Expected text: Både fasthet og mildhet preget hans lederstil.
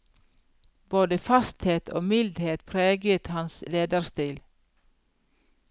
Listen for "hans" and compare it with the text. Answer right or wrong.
right